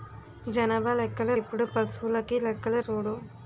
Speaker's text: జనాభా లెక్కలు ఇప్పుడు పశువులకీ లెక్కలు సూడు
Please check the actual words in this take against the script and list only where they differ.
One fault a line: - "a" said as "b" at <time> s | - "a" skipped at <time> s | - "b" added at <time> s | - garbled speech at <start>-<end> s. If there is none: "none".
none